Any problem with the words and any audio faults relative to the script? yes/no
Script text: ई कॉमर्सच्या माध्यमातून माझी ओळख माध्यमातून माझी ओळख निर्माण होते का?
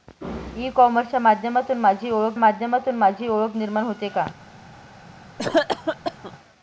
yes